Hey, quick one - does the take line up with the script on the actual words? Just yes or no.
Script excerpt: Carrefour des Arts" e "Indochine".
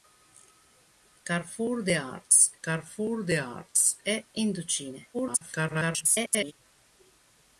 no